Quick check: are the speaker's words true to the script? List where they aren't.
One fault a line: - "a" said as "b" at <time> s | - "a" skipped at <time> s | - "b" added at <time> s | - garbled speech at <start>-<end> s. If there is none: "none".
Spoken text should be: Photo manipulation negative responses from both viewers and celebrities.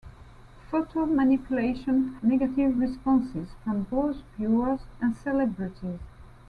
none